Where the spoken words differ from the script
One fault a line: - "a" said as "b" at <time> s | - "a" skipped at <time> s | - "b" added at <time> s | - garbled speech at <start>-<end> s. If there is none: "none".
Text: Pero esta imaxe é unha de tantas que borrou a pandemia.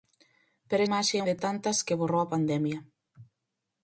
- "esta" skipped at 0.8 s
- "unha" skipped at 1.2 s